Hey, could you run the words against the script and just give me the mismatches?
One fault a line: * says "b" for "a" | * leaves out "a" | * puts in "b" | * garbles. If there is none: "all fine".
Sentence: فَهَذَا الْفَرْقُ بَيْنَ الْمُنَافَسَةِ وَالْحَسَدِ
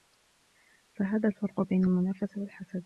all fine